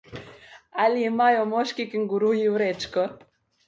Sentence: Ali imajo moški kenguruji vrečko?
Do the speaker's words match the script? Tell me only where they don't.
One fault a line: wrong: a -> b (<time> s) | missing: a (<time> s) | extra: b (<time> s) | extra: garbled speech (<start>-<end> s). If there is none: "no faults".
no faults